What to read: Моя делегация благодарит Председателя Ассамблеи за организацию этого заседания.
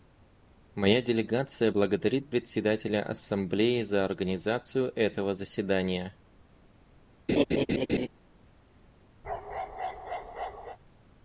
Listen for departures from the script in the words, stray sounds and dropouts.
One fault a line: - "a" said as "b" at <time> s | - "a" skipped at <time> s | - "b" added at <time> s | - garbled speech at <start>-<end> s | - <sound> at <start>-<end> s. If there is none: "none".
- laugh at 7.3-8.1 s
- bark at 9.2-10.8 s